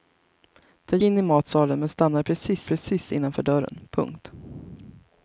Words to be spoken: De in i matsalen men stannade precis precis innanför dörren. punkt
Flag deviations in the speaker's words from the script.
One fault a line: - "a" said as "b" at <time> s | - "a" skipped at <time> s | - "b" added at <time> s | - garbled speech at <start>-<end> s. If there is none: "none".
none